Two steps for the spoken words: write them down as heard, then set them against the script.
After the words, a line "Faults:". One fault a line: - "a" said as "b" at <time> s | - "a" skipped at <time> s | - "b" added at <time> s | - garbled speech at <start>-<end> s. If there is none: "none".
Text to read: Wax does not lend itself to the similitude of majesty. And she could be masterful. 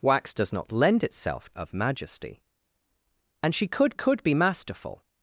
Wax does not lend itself of majesty. And she could could be masterful.
Faults:
- "to the similitude" skipped at 1.5 s
- "could" added at 3.9 s